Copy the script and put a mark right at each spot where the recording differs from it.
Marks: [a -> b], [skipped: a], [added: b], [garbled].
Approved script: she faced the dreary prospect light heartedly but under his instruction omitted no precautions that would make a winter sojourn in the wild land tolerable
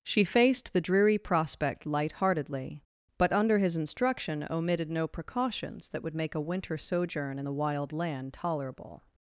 she faced the dreary prospect light heartedly but under his instruction omitted no precautions that would make a winter sojourn in the wild land tolerable